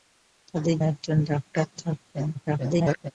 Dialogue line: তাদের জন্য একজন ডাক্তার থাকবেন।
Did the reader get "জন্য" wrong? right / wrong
wrong